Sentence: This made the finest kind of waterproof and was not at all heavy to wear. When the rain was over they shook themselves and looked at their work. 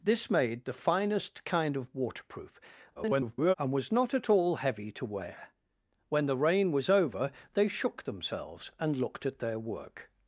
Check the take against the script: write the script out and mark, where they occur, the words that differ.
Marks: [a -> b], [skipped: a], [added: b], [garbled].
This made the finest kind of waterproof [garbled] and was not at all heavy to wear. When the rain was over they shook themselves and looked at their work.